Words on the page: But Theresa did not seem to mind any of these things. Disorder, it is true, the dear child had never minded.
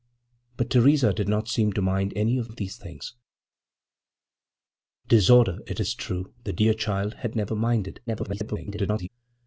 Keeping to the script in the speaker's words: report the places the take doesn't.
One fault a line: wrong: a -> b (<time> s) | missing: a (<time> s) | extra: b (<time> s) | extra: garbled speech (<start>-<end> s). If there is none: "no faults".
extra: of (2.5 s)
extra: garbled speech (8.1-9.1 s)